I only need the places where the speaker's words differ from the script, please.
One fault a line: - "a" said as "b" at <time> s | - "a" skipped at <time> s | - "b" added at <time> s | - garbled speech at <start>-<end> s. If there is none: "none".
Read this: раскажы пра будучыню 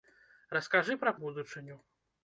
none